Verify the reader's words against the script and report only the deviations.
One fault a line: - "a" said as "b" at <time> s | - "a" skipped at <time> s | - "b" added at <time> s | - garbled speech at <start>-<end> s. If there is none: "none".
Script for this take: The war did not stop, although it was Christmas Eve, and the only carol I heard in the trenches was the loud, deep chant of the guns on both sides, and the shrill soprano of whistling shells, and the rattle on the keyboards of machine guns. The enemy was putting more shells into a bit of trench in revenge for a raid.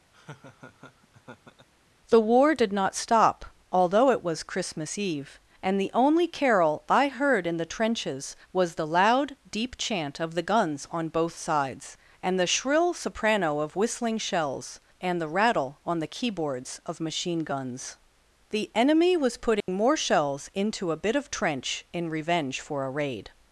none